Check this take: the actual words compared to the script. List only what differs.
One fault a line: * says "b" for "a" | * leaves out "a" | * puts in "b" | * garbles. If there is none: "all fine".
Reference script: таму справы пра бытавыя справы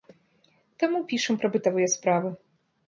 * says "пішам" for "справы"